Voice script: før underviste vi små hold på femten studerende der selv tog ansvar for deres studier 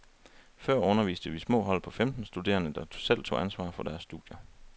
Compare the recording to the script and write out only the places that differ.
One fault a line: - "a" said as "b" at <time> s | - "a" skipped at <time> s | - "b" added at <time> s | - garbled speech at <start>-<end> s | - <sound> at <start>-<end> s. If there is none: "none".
none